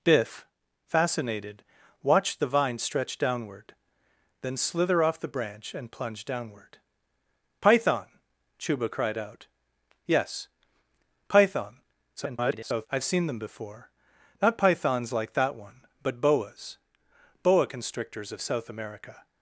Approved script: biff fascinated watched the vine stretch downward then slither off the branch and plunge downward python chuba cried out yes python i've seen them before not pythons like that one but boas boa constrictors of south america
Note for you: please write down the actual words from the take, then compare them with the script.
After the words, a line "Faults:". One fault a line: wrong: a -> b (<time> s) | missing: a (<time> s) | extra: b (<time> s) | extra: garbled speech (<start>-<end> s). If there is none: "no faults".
biff fascinated watched the vine stretch downward then slither off the branch and plunge downward python chuba cried out yes python [garbled] i've seen them before not pythons like that one but boas boa constrictors of south america
Faults:
extra: garbled speech (12.2-12.9 s)